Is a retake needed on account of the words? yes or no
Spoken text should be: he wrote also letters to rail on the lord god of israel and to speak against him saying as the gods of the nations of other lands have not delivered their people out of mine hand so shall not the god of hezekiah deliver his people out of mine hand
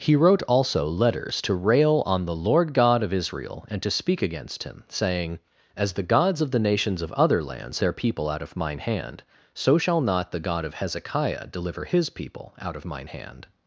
yes